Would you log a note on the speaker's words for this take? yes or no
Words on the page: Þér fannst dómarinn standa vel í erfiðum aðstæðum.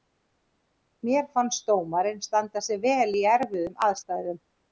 yes